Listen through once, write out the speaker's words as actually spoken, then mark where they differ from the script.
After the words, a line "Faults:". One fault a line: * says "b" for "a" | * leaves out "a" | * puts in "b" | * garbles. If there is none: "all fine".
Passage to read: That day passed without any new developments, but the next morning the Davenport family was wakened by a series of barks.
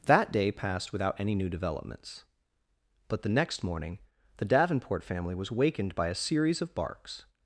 That day passed without any new developments, but the next morning the Davenport family was wakened by a series of barks.
Faults:
all fine